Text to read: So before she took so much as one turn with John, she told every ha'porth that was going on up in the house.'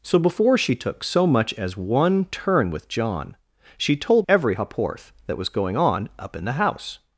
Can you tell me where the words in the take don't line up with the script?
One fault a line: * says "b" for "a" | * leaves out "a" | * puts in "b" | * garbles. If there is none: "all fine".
all fine